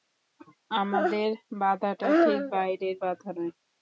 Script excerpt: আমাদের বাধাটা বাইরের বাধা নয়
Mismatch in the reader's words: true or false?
true